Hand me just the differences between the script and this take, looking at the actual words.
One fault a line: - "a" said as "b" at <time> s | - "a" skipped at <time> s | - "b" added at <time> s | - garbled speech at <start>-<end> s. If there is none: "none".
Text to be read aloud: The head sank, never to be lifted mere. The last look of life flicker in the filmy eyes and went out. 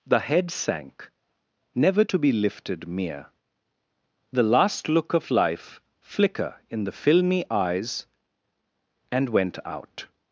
none